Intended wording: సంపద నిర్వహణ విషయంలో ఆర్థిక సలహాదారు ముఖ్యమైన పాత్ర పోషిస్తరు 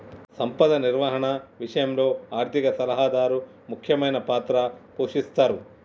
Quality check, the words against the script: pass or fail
pass